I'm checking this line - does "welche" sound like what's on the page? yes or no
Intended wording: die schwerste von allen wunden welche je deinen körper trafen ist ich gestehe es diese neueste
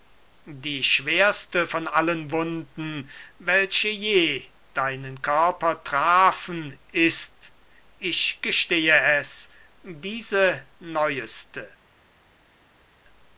yes